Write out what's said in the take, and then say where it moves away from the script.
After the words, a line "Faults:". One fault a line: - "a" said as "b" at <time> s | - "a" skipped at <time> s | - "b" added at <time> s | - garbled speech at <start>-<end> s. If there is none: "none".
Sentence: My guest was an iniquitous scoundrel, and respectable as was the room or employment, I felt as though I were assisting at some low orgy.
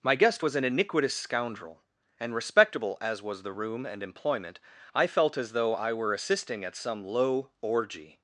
My guest was an iniquitous scoundrel, and respectable as was the room and employment, I felt as though I were assisting at some low orgy.
Faults:
- "or" said as "and" at 3.8 s